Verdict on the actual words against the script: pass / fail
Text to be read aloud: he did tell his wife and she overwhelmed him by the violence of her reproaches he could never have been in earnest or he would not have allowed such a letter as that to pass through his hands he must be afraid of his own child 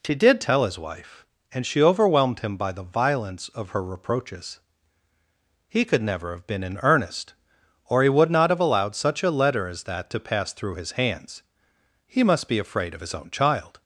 pass